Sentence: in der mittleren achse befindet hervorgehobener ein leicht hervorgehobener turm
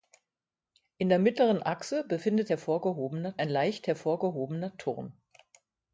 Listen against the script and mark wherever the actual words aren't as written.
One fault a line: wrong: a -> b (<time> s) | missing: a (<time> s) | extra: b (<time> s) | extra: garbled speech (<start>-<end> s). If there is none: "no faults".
no faults